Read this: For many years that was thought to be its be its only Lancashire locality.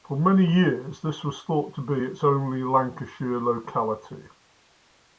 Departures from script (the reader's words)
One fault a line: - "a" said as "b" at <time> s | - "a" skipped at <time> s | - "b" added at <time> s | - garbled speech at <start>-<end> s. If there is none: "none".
- "that" said as "this" at 1.0 s
- "be its" skipped at 2.2 s